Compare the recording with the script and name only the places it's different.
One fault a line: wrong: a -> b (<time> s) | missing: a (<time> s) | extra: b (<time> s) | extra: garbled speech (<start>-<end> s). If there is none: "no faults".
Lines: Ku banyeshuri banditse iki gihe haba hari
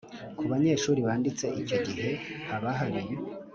wrong: iki -> icyo (1.6 s)